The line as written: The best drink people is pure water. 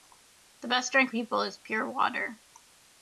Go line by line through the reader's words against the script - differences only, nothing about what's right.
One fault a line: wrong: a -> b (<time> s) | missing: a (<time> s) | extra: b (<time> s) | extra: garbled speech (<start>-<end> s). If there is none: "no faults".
no faults